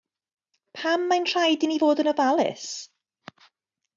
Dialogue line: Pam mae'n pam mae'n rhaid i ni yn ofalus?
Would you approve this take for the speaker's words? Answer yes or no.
no